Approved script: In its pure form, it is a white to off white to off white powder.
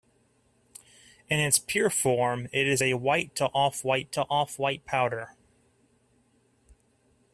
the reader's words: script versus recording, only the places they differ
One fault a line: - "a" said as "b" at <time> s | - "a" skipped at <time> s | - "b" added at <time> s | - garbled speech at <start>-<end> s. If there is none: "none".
none